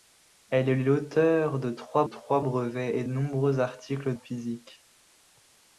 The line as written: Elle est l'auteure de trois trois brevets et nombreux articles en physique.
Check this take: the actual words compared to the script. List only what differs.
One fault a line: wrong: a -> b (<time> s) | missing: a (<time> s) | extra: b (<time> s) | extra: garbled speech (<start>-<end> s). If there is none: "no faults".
no faults